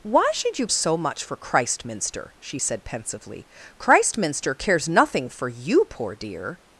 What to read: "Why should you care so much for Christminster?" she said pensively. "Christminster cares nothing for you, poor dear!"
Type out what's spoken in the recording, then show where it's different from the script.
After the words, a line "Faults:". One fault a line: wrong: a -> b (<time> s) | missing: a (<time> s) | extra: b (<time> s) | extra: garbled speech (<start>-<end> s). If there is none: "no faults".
"Why should you so much for Christminster?" she said pensively. "Christminster cares nothing for you, poor dear!"
Faults:
missing: care (0.7 s)